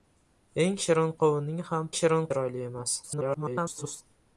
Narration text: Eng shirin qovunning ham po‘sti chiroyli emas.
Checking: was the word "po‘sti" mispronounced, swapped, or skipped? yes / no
yes